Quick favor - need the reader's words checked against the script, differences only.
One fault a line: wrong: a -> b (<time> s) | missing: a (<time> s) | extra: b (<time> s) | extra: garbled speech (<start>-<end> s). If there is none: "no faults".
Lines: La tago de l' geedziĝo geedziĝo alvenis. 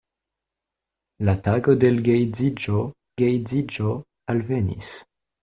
no faults